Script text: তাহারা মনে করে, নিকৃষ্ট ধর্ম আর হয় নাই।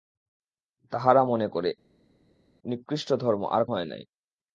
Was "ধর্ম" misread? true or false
false